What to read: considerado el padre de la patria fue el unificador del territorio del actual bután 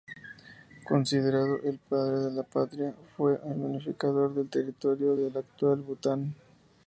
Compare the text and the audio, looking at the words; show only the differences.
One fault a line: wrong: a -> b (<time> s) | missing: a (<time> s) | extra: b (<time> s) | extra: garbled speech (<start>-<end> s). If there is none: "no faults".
no faults